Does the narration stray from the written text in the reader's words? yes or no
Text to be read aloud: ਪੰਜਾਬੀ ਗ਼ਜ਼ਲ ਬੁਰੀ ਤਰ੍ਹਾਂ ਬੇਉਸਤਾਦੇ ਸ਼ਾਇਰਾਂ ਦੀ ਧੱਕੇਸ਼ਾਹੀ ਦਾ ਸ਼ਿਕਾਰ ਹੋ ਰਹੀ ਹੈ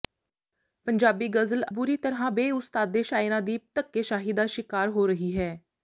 no